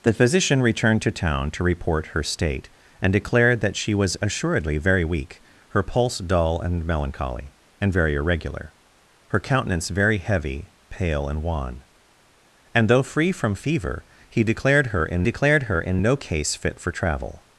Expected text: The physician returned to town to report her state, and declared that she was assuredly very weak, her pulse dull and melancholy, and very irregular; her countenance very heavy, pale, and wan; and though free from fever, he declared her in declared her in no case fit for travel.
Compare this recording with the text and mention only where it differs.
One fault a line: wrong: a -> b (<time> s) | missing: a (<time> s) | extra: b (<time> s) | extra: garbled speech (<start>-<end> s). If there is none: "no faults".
no faults